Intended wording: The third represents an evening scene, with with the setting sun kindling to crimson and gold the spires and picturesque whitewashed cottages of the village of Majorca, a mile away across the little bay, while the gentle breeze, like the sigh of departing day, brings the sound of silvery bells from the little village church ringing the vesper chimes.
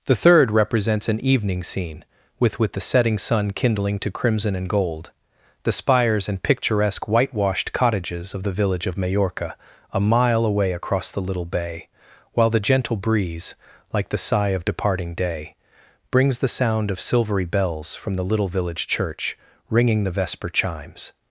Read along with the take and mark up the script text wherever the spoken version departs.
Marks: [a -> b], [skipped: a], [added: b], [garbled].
The third represents an evening scene, with with the setting sun kindling to crimson and gold the spires and picturesque whitewashed cottages of the village of Majorca, a mile away across the little bay, while the gentle breeze, like the sigh of departing day, brings the sound of silvery bells from the little village church ringing the vesper chimes.